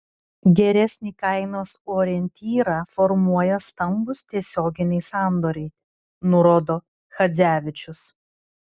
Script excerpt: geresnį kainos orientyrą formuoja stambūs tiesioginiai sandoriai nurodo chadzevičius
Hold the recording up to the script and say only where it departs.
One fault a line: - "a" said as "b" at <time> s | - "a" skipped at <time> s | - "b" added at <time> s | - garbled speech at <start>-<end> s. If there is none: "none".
none